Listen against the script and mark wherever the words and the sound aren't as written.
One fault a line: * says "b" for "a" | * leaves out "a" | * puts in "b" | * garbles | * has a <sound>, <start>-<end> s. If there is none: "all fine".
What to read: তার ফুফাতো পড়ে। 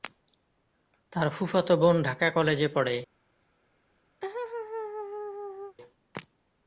* puts in "বোন ঢাকা কলেজে"
* has a laugh, 4.2-5.8 s